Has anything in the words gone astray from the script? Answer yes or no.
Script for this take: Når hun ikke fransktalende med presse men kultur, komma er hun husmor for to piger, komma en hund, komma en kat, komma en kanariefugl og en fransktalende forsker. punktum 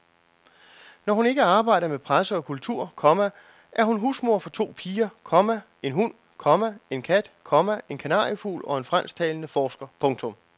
yes